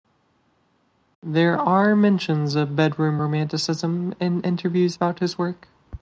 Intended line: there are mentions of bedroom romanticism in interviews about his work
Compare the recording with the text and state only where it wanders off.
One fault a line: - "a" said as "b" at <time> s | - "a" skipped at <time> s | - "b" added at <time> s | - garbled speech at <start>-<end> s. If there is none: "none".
none